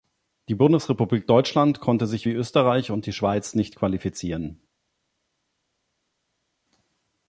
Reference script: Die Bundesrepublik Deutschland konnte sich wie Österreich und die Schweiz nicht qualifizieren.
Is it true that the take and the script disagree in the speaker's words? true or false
false